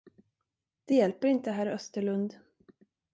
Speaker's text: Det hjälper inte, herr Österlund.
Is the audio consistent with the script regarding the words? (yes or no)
yes